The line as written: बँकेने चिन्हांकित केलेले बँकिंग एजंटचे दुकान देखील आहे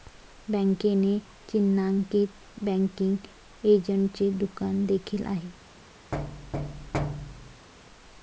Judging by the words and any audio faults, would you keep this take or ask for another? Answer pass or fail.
fail